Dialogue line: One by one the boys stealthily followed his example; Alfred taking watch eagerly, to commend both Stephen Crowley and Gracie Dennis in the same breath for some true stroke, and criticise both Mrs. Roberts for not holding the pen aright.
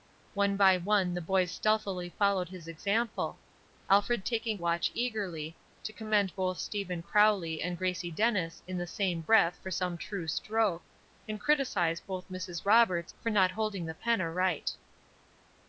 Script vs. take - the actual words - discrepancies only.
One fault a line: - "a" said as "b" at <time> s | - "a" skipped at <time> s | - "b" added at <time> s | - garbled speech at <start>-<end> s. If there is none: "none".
none